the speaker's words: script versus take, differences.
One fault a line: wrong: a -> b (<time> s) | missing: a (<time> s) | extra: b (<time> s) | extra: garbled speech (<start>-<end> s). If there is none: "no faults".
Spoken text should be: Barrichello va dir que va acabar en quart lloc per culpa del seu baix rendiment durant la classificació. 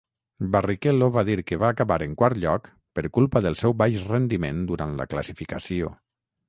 no faults